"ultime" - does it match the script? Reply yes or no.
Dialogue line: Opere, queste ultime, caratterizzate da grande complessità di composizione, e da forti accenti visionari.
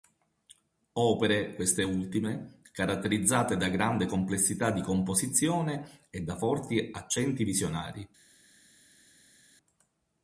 yes